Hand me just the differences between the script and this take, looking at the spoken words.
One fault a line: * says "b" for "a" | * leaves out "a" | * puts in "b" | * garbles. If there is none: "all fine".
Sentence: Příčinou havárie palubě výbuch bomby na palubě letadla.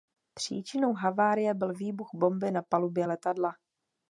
* says "byl" for "palubě"